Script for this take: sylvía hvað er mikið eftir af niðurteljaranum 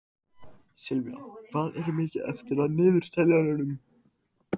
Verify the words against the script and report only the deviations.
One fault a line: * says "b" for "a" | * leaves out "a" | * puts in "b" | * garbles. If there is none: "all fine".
all fine